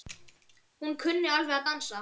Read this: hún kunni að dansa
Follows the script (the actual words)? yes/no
no